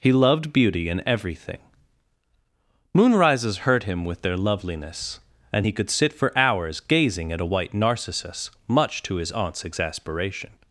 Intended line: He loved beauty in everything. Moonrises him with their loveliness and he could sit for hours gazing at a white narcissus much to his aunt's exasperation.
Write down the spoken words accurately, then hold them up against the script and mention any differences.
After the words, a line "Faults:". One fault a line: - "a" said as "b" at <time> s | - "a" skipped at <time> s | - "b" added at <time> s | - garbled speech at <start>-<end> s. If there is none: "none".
He loved beauty in everything. Moonrises hurt him with their loveliness and he could sit for hours gazing at a white narcissus much to his aunt's exasperation.
Faults:
- "hurt" added at 3.7 s